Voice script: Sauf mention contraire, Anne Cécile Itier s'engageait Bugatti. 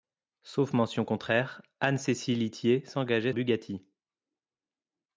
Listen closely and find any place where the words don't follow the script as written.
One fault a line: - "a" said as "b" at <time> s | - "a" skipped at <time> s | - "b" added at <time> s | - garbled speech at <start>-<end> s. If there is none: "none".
none